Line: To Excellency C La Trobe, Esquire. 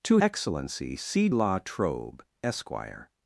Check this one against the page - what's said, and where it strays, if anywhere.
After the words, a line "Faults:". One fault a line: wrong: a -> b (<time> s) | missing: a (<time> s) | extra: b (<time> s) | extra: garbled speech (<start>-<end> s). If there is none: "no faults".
To Excellency C La Trobe, Esquire.
Faults:
no faults